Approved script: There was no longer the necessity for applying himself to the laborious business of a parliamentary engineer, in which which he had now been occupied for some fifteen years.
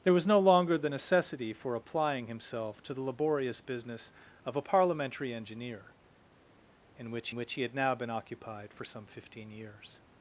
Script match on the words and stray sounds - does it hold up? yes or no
yes